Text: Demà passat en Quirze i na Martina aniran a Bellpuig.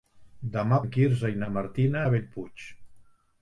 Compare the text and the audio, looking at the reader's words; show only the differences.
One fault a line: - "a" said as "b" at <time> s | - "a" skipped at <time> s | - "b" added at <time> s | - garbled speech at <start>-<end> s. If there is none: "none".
- "passat" skipped at 0.8 s
- "aniran" skipped at 2.0 s